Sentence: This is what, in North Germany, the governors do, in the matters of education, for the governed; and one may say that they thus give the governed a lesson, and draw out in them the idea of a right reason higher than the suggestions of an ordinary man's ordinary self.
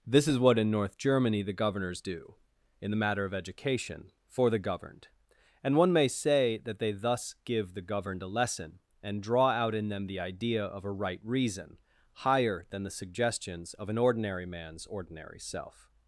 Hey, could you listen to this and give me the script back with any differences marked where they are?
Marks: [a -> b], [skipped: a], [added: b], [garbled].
This is what, in North Germany, the governors do, in the [matters -> matter] of education, for the governed; and one may say that they thus give the governed a lesson, and draw out in them the idea of a right reason higher than the suggestions of an ordinary man's ordinary self.